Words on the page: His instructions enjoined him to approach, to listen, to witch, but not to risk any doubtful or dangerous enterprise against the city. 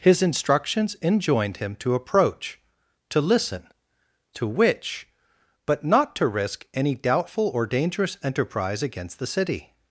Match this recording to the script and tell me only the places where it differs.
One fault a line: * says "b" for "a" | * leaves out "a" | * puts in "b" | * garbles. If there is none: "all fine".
all fine